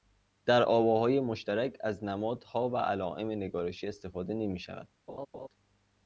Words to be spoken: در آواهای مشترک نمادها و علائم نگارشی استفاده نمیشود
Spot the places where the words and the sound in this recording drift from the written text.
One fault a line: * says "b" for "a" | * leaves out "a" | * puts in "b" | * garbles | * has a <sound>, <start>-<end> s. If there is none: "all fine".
* puts in "از"
* has a laugh, 5.1-5.5 s